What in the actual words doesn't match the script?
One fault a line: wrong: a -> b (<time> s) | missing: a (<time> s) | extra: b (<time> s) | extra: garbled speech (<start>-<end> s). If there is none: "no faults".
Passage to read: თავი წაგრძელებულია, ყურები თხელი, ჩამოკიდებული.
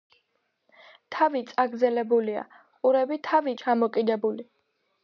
wrong: თხელი -> თავი (3.3 s)